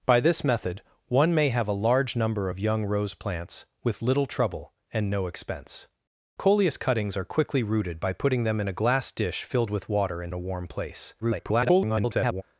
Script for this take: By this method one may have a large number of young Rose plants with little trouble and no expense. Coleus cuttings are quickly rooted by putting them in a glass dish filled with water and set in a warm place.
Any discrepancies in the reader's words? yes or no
yes